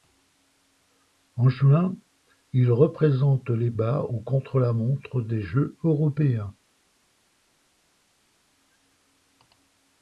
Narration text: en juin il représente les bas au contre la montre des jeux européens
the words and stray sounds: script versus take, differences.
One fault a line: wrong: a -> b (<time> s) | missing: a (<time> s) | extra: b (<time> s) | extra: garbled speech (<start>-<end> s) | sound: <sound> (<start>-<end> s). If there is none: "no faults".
no faults